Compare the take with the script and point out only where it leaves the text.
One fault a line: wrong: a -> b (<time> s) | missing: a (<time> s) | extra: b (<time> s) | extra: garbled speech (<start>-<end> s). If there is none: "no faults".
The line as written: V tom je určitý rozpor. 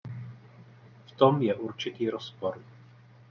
no faults